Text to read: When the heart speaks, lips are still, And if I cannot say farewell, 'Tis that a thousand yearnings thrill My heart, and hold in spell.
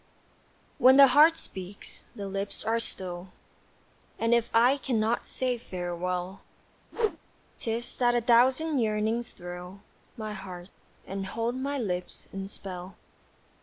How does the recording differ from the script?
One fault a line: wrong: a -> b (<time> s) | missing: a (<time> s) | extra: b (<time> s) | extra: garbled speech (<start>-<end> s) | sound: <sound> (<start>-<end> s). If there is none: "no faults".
extra: the (2.1 s)
sound: whoosh (6.9-7.2 s)
extra: my lips (11.6 s)